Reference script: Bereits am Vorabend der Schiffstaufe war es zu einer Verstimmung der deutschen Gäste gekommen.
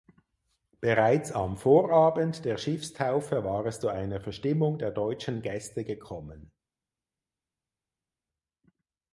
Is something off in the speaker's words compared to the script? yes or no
no